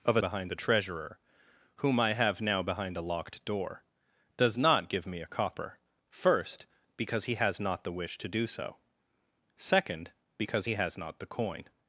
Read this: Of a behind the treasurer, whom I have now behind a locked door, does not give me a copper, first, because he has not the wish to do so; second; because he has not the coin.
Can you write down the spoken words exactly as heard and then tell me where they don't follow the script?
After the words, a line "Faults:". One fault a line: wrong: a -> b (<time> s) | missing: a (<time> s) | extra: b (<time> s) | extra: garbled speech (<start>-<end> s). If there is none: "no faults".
Of a behind the treasurer, whom I have now behind a locked door, does not give me a copper, first, because he has not the wish to do so; second; because he has not the coin.
Faults:
no faults